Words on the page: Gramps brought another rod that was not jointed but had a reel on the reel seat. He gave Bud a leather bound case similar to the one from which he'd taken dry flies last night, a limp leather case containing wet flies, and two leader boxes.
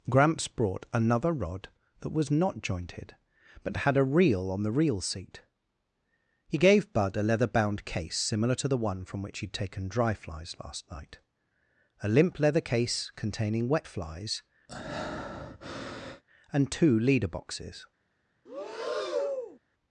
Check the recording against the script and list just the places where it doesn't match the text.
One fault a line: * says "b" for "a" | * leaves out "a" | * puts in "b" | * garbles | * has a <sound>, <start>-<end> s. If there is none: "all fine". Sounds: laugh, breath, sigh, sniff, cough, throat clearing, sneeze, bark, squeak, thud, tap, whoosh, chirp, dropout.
* has a breath, 14.7-16.2 s
* has a breath, 18.5-19.6 s